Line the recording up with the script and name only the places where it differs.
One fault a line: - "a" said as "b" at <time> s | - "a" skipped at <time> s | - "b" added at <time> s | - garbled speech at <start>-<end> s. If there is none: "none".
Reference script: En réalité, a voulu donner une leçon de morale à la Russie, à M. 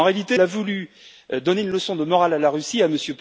none